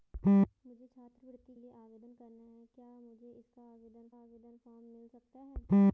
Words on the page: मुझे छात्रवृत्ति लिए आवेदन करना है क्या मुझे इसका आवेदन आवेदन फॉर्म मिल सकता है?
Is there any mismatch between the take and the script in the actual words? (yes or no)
no